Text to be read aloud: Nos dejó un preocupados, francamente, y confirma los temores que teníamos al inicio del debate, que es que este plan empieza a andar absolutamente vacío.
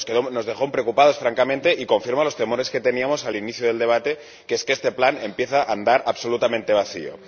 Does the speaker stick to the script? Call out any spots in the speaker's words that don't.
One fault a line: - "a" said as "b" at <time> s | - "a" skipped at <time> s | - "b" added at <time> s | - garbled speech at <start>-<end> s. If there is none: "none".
none